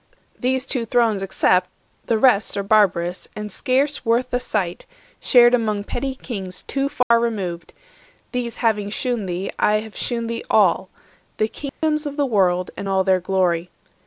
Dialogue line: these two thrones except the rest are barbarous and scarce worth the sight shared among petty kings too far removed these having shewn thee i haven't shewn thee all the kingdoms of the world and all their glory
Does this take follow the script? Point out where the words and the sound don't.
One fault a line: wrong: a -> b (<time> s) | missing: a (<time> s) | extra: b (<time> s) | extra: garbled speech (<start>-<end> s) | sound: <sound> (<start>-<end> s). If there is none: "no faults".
sound: dropout (7.0-7.1 s)
wrong: haven't -> have (9.8 s)
sound: dropout (11.7-11.8 s)